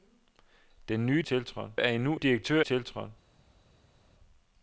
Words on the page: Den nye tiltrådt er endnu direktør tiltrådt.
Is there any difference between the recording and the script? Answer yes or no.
no